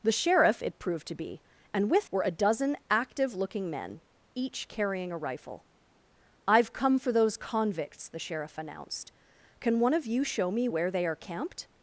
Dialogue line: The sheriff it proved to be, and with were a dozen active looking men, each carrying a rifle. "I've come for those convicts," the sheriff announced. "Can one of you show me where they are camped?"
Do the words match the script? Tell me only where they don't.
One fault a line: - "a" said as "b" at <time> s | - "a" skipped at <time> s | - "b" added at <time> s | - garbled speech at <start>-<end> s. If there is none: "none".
none